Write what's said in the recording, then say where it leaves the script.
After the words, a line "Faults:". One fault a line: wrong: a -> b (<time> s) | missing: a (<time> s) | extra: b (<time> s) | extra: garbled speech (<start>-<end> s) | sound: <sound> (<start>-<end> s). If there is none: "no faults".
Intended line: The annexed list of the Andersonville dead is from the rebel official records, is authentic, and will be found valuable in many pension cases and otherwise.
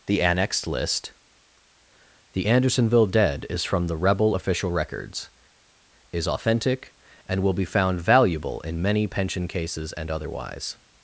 The annexed list the Andersonville dead is from the rebel official records, is authentic, and will be found valuable in many pension cases and otherwise.
Faults:
missing: of (1.1 s)